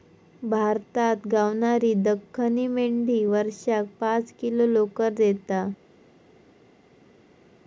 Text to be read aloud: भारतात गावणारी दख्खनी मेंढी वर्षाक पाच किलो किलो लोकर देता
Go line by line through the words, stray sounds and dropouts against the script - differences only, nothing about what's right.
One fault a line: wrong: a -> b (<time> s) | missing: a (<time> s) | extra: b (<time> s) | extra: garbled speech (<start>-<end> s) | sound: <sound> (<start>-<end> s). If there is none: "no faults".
missing: किलो (4.7 s)